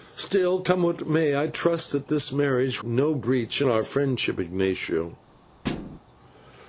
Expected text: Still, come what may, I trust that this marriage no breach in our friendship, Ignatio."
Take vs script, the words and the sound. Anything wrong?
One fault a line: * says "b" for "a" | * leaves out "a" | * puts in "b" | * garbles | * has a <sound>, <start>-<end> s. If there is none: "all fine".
* has a thud, 5.6-6.0 s